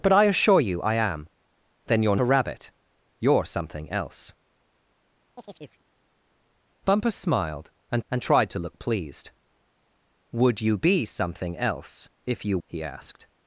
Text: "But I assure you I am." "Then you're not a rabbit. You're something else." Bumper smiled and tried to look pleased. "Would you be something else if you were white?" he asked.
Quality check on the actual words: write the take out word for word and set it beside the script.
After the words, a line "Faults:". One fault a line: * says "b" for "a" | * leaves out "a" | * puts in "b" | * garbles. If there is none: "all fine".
"But I assure you I am." "Then you're a rabbit. You're something else." Bumper smiled and and tried to look pleased. "Would you be something else if you?" he asked.
Faults:
* leaves out "not"
* puts in "and"
* leaves out "were white"